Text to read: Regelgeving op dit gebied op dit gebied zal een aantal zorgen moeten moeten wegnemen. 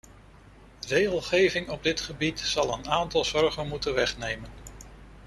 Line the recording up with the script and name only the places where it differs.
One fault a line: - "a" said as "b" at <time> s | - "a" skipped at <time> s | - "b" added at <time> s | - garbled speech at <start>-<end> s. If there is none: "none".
- "op dit gebied" skipped at 2.4 s
- "moeten" skipped at 3.9 s